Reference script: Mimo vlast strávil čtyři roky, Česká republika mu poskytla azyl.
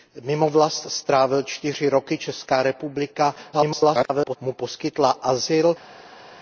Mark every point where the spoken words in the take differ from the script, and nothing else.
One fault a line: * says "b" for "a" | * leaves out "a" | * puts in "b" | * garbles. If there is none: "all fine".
* garbles